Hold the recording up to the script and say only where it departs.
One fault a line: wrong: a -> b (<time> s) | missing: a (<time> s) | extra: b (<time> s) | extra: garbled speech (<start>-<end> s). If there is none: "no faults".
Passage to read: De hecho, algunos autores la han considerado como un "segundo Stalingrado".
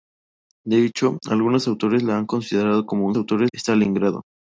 wrong: segundo -> autores (3.2 s)